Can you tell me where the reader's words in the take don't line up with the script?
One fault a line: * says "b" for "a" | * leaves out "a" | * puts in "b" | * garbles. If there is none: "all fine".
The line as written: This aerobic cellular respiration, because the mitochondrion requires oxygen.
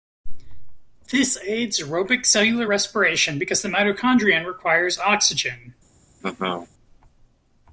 * puts in "aids"